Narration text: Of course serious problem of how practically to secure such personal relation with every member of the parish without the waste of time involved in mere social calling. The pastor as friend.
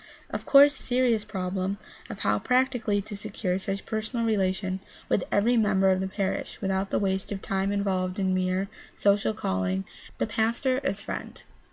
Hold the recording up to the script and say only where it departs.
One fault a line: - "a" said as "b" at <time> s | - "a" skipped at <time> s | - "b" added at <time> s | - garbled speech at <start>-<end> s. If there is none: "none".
none